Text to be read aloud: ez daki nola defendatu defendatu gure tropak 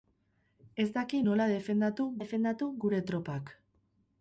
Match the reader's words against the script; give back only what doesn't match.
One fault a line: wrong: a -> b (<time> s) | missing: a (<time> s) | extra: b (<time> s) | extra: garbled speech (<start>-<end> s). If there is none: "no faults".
no faults